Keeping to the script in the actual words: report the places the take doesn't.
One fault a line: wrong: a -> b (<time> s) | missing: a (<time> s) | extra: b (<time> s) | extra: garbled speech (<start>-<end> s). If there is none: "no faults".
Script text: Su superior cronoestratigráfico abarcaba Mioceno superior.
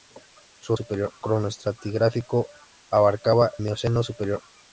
no faults